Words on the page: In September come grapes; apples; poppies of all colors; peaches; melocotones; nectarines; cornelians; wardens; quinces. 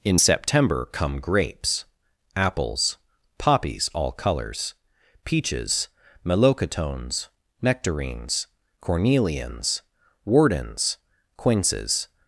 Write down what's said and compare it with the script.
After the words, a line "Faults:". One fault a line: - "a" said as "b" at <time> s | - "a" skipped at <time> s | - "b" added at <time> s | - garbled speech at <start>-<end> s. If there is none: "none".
In September come grapes; apples; poppies all colors; peaches; melocotones; nectarines; cornelians; wardens; quinces.
Faults:
- "of" skipped at 3.9 s